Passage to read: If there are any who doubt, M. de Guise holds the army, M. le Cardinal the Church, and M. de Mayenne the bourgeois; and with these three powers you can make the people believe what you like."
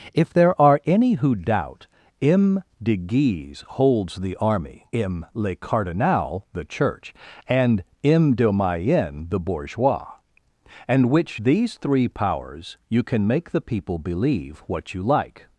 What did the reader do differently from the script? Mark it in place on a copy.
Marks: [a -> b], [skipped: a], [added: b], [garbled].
If there are any who doubt, M. de Guise holds the army, M. le Cardinal the Church, and M. de Mayenne the bourgeois; and [with -> which] these three powers you can make the people believe what you like."